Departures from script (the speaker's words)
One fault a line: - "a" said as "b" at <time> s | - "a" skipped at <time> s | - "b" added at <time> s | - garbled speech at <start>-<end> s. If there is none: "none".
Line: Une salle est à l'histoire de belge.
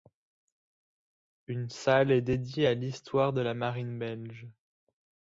- "dédiée" added at 2.2 s
- "la Marine" added at 3.4 s